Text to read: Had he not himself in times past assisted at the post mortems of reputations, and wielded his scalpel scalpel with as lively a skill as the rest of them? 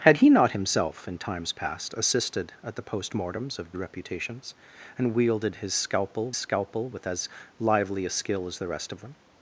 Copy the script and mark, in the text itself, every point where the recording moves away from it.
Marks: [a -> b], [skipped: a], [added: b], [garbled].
Had he not himself in times past assisted at the post mortems of reputations, and wielded his scalpel scalpel with as lively a skill as the rest of them?